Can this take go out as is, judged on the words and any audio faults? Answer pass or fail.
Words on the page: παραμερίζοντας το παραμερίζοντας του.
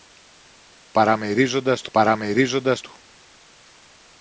pass